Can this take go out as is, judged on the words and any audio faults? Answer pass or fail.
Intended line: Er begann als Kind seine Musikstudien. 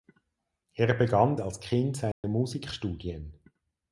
fail